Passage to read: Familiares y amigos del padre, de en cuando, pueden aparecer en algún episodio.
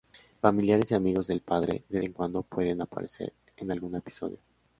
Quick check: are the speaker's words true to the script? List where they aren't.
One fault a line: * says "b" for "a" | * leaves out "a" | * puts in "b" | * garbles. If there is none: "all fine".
all fine